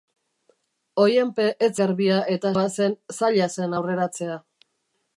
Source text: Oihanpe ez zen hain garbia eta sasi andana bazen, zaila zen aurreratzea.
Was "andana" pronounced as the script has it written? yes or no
no